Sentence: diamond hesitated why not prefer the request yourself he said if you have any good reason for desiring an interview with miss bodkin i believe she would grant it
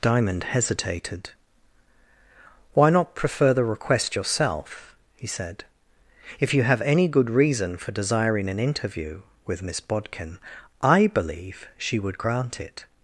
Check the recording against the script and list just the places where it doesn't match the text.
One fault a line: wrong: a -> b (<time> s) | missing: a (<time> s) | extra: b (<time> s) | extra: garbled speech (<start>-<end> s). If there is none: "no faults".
no faults